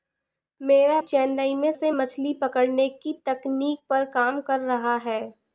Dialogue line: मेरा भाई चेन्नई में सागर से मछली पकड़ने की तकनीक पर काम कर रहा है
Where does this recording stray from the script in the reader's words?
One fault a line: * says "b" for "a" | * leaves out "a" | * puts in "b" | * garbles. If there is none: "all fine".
* leaves out "भाई"
* leaves out "सागर"